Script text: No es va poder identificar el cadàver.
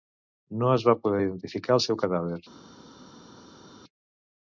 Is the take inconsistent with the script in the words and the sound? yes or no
yes